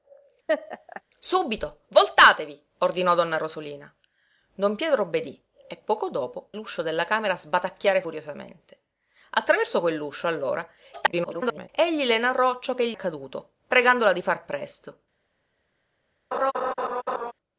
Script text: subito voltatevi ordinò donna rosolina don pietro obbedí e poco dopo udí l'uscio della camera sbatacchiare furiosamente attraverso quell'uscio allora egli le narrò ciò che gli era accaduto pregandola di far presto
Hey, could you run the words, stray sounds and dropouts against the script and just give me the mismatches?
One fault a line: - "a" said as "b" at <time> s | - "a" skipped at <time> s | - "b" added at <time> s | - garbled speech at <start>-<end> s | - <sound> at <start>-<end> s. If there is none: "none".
- laugh at 0.5-1.0 s
- "udí" skipped at 6.5 s
- garbled speech at 10.9-11.7 s
- "era" skipped at 13.0 s
- laugh at 16.3-17.3 s